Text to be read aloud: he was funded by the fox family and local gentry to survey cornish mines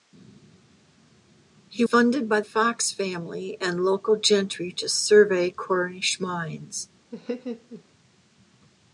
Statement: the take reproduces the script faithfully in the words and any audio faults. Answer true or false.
false